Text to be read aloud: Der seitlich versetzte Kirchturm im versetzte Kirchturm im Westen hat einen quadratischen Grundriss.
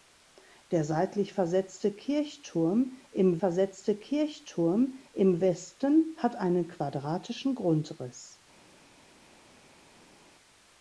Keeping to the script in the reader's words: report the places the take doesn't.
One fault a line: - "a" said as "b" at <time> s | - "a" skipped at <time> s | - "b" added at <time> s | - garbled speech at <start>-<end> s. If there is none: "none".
none